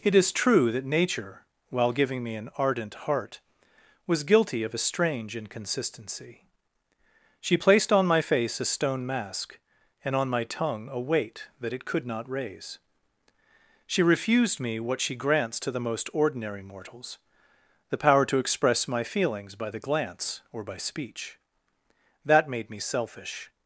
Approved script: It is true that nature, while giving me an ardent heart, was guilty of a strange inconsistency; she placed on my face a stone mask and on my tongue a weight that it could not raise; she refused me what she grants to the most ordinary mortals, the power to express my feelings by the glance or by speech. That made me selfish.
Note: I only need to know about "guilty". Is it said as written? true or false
true